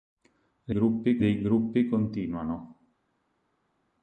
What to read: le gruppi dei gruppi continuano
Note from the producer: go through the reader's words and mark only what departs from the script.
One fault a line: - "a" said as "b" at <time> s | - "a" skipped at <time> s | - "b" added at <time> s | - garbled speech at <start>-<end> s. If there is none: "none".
none